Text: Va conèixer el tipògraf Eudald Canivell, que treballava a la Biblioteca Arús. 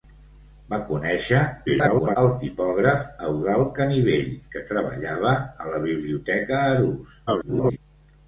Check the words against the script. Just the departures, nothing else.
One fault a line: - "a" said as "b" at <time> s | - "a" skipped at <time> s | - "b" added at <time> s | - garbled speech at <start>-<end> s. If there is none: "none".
- garbled speech at 1.7-2.2 s
- garbled speech at 7.3-7.8 s